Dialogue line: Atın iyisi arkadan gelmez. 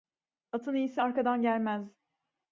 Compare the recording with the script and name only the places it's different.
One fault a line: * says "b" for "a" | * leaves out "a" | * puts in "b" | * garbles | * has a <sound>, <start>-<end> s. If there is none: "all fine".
all fine